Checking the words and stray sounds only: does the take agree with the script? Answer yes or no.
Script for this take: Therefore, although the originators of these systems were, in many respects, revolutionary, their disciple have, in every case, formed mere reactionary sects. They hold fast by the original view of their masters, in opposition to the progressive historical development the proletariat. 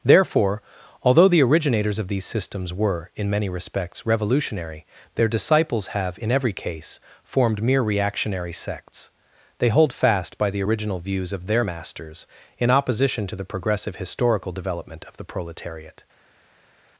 no